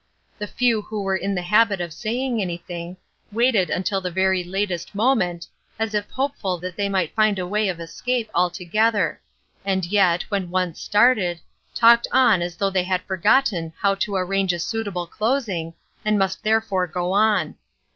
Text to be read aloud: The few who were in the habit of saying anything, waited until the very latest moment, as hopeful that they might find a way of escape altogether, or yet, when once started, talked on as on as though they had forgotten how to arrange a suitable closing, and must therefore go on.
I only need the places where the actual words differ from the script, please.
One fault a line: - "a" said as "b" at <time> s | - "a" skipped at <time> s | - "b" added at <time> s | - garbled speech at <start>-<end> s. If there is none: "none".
- "if" added at 5.9 s
- "or" said as "and" at 9.7 s
- "on as" skipped at 12.6 s